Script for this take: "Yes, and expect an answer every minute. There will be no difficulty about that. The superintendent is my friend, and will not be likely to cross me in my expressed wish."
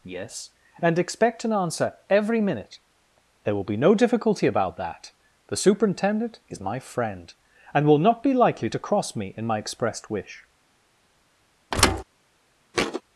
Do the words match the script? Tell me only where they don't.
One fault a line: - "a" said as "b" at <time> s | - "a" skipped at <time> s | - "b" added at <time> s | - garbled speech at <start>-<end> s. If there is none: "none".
none